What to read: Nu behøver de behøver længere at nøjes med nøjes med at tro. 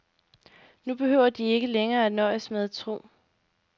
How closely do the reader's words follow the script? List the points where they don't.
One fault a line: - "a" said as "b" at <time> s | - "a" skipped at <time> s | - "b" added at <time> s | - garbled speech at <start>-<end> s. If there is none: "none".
- "behøver" said as "ikke" at 1.4 s
- "nøjes med" skipped at 2.6 s